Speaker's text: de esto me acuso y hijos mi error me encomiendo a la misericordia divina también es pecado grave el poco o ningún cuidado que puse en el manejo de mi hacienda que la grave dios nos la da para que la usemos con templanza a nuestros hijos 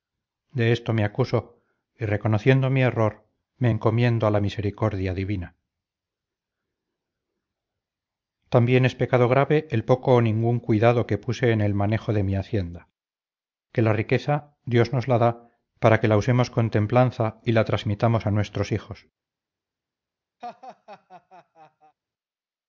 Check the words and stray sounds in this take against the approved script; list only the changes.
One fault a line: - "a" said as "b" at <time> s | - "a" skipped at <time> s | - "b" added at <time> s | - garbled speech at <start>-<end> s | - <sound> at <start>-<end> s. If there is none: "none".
- "hijos" said as "reconociendo" at 2.0 s
- "grave" said as "riqueza" at 13.9 s
- "y la transmitamos" added at 17.4 s
- laugh at 20.4-22.0 s